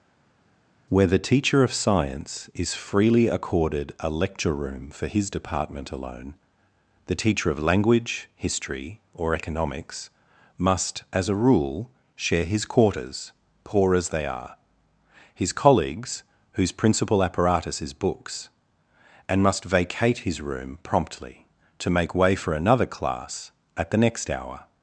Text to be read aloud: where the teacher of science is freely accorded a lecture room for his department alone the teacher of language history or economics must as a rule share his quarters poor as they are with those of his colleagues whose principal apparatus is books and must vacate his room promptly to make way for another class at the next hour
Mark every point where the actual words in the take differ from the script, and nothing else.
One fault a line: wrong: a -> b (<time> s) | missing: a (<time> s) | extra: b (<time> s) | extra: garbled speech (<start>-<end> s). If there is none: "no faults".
missing: with those of (14.6 s)